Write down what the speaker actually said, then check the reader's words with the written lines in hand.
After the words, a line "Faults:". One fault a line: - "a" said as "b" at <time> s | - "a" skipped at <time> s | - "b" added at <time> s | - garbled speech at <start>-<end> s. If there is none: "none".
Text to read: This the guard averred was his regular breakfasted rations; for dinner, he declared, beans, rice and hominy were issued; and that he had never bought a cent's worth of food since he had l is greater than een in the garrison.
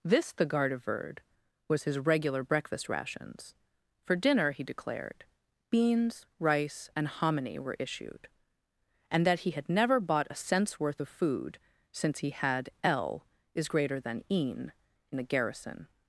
This the guard averred was his regular breakfast rations; for dinner, he declared, beans, rice and hominy were issued; and that he had never bought a cent's worth of food since he had l is greater than een in the garrison.
Faults:
- "breakfasted" said as "breakfast" at 2.4 s